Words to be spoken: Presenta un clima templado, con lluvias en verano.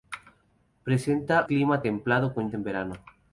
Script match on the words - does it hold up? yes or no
no